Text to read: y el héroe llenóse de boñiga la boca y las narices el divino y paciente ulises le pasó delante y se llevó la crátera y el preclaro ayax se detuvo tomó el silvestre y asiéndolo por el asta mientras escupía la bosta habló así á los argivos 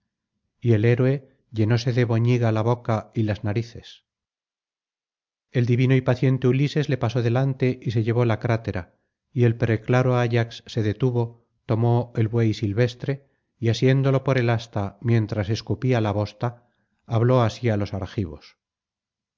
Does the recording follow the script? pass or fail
fail